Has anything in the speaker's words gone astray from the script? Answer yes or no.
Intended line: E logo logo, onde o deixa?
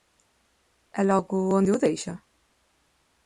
yes